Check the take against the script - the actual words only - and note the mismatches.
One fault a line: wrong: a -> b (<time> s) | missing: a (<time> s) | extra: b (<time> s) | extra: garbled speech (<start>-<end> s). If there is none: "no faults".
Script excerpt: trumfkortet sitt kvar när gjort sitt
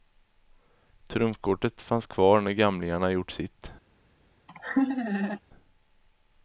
wrong: sitt -> fanns (1.8 s)
extra: gamlingarna (2.5 s)